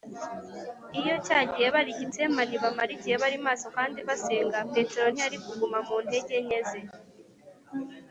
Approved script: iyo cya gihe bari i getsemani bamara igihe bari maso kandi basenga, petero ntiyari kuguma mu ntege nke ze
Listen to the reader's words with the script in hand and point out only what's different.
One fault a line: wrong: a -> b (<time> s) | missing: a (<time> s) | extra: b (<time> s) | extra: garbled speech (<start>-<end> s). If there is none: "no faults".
no faults